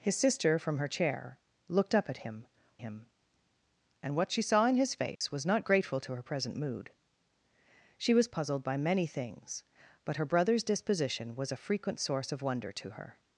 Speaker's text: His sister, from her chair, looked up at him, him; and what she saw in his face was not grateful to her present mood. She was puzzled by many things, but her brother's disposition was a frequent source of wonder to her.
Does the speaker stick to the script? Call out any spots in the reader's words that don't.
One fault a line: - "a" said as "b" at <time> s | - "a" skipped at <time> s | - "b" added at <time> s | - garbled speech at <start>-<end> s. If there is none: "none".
none